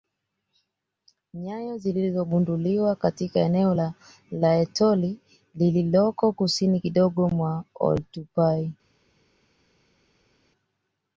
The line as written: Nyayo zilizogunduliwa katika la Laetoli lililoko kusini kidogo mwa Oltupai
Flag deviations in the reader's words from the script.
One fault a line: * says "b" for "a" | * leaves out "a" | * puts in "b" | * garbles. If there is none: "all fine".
* puts in "eneo"